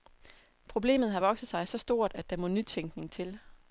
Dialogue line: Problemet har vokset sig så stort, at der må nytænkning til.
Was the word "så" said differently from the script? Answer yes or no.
no